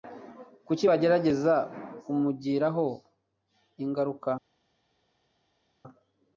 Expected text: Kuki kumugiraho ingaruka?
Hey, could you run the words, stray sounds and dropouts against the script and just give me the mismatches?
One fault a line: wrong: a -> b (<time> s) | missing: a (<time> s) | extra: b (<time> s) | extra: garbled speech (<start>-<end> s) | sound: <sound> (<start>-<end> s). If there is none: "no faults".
extra: bagerageza (0.9 s)